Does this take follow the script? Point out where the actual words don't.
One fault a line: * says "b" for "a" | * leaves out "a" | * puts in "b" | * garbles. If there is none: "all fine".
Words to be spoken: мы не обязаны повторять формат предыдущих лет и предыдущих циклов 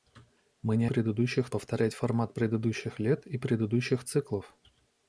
* says "предыдущих" for "обязаны"